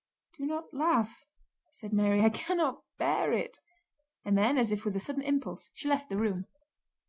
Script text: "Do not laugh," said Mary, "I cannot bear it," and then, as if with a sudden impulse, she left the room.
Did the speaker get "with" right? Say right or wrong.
right